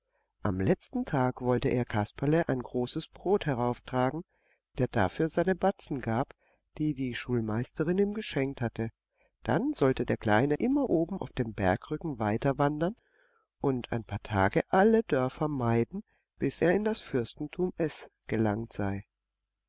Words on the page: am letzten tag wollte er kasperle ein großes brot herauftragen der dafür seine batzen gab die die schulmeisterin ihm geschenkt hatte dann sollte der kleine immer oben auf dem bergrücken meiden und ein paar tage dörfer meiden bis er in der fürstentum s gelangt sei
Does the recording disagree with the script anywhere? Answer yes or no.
yes